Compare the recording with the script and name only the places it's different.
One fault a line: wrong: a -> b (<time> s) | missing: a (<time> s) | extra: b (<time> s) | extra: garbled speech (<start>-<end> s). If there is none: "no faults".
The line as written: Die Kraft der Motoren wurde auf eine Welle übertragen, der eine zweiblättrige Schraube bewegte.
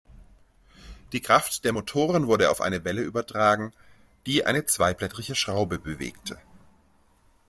wrong: der -> die (4.3 s)